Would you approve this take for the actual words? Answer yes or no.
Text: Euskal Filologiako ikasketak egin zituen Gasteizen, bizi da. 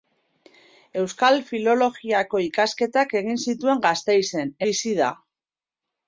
yes